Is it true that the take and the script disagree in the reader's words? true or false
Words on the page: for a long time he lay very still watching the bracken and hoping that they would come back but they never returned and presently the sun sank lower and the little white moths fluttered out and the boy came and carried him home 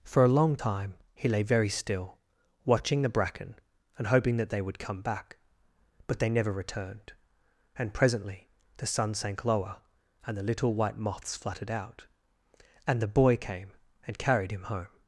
false